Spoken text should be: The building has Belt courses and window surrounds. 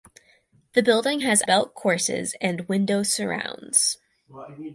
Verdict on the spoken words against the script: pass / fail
pass